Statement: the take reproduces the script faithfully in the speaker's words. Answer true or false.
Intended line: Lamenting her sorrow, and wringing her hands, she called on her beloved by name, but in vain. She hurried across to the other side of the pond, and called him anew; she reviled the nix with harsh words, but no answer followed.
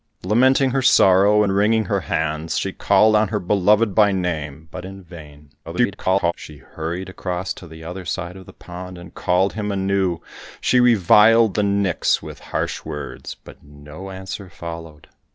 false